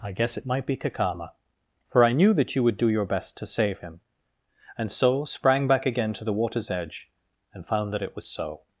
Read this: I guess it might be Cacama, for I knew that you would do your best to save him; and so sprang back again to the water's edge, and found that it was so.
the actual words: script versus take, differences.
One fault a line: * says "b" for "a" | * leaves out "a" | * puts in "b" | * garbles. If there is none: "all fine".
all fine